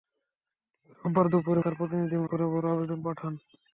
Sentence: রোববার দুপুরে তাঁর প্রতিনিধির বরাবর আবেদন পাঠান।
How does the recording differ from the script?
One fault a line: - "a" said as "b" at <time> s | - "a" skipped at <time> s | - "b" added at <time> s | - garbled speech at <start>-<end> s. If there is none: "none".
none